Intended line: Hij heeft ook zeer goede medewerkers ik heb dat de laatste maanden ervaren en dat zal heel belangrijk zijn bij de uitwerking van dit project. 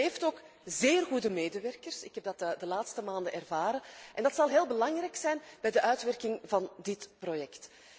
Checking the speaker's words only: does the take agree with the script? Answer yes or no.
yes